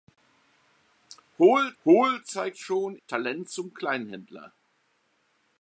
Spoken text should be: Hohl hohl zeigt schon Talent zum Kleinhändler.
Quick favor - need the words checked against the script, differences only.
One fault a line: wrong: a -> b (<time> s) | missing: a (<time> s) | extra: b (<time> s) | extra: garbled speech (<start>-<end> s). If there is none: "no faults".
no faults